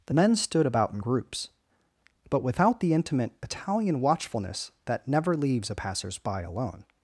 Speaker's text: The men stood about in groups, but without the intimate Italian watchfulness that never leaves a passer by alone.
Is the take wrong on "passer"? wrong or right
wrong